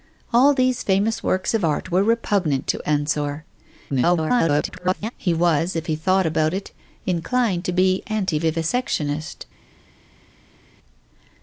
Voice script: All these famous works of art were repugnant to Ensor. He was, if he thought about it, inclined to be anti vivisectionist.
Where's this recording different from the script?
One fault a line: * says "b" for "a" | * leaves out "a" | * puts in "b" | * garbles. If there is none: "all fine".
* garbles